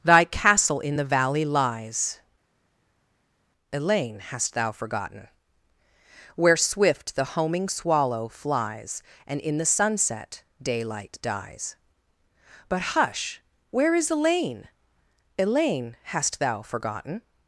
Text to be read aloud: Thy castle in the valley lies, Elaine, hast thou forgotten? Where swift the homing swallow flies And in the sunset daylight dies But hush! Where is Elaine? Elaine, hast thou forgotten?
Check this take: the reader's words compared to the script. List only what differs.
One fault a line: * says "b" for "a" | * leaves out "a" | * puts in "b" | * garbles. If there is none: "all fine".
all fine